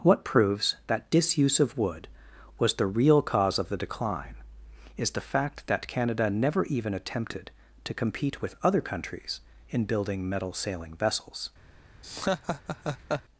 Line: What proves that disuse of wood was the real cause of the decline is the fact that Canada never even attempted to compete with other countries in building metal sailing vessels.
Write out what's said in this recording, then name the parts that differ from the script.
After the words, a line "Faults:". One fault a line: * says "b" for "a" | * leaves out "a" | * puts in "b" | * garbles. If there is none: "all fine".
What proves that disuse of wood was the real cause of the decline is the fact that Canada never even attempted to compete with other countries in building metal sailing vessels.
Faults:
all fine